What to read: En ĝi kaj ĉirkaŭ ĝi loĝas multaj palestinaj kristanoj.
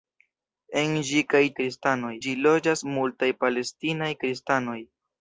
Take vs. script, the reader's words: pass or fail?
fail